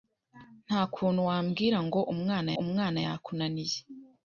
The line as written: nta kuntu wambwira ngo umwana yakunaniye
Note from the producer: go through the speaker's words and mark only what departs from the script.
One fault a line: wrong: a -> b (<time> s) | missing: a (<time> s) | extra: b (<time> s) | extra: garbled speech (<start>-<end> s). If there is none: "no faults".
extra: umwana (2.6 s)